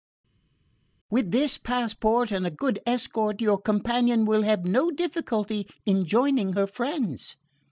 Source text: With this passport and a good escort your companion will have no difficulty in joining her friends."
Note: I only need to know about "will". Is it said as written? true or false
true